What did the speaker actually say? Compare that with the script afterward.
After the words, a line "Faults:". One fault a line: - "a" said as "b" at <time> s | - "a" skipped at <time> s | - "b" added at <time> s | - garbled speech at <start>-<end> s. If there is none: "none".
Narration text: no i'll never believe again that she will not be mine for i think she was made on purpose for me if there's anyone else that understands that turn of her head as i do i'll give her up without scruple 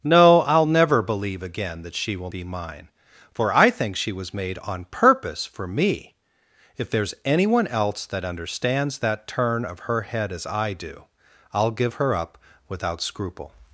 no i'll never believe again that she will be mine for i think she was made on purpose for me if there's anyone else that understands that turn of her head as i do i'll give her up without scruple
Faults:
- "not" skipped at 2.3 s